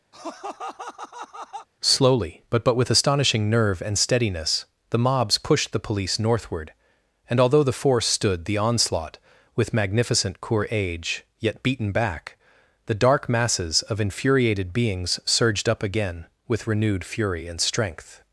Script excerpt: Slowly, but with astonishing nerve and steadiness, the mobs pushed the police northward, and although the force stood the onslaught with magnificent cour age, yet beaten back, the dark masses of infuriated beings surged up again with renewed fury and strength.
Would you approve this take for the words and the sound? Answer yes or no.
no